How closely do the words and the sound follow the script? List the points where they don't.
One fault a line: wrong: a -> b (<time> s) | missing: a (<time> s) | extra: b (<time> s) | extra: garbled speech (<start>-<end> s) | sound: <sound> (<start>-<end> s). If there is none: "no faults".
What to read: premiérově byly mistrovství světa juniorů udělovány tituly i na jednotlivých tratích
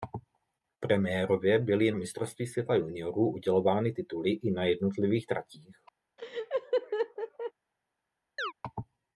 sound: laugh (6.2-7.5 s)
sound: chirp (8.4-8.5 s)